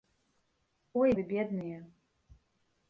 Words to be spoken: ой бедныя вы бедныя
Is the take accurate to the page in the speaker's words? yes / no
no